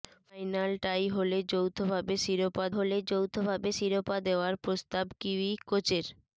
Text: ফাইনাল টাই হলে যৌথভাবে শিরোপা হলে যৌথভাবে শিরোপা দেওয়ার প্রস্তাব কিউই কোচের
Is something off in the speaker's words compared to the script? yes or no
no